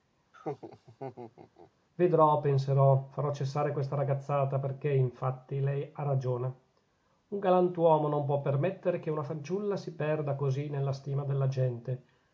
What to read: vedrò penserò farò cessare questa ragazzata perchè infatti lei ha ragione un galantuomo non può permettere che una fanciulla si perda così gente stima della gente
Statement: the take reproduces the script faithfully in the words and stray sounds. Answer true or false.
false